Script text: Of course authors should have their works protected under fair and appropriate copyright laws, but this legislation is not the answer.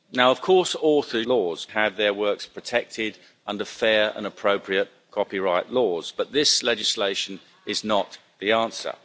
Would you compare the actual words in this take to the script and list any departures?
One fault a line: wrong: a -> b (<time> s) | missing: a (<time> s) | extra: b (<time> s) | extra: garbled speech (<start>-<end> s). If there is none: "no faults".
wrong: should -> laws (1.2 s)